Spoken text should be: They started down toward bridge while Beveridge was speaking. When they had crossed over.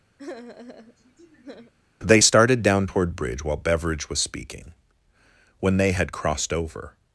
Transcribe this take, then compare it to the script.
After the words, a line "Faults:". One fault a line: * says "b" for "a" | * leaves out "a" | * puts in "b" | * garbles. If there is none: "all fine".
They started down toward bridge while Beveridge was speaking. When they had crossed over.
Faults:
all fine